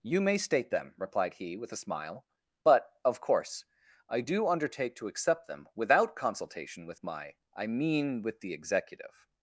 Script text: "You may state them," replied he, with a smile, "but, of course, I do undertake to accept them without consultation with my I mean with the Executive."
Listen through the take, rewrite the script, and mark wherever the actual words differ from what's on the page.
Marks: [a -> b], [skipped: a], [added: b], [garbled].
"You may state them," replied he, with a smile, "but, of course, I do undertake to accept them without consultation with my I mean with the Executive."